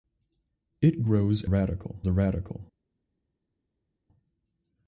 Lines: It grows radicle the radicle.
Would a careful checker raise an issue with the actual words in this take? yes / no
no